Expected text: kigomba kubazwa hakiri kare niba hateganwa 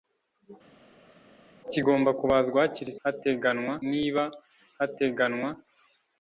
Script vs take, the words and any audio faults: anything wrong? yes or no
yes